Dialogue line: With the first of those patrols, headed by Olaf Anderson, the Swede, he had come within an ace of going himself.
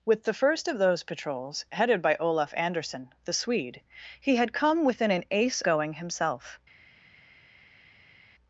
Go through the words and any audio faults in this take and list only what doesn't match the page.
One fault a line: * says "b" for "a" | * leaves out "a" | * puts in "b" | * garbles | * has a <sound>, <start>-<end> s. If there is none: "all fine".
* leaves out "of"